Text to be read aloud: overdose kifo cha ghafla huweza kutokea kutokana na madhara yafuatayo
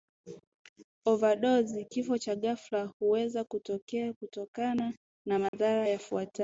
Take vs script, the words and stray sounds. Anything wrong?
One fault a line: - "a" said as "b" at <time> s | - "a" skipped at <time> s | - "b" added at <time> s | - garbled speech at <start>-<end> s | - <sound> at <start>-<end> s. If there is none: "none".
- dropout at 5.5-5.5 s